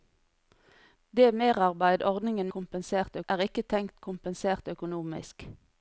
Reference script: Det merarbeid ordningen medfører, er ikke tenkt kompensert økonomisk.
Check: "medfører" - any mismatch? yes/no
yes